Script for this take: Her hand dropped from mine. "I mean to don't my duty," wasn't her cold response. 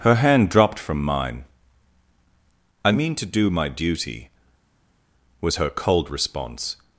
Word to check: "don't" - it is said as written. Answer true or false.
false